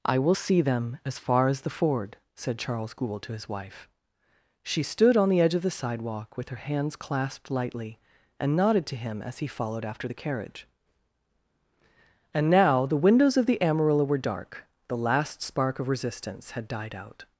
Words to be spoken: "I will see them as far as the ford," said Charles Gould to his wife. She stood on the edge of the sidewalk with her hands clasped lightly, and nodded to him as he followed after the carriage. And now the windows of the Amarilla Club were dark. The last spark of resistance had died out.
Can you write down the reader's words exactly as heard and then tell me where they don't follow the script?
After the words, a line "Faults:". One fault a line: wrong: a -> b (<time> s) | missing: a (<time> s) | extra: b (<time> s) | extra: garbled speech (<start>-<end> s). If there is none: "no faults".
"I will see them as far as the ford," said Charles Gould to his wife. She stood on the edge of the sidewalk with her hands clasped lightly, and nodded to him as he followed after the carriage. And now the windows of the Amarilla were dark. The last spark of resistance had died out.
Faults:
missing: Club (14.0 s)